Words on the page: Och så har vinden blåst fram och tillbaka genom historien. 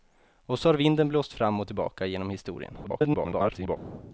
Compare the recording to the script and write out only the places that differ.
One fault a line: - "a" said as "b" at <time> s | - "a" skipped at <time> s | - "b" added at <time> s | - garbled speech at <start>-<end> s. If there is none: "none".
- garbled speech at 2.8-3.8 s